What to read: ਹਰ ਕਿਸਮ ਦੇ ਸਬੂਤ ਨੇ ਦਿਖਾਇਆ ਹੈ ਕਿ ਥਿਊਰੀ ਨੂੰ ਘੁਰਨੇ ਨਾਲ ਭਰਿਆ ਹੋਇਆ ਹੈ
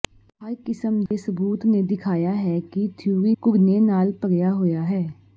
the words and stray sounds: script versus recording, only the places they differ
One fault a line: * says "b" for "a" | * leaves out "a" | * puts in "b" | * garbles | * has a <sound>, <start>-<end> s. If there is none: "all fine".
* has a dropout, 1.1-1.1 s
* leaves out "ਨੂੰ"